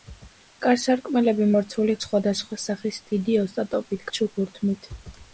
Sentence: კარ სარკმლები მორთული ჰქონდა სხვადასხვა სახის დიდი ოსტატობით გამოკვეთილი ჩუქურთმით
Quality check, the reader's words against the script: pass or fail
fail